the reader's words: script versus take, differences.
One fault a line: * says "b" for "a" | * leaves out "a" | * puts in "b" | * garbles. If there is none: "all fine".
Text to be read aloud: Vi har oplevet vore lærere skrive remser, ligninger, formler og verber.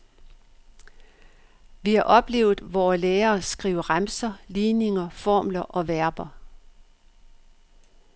all fine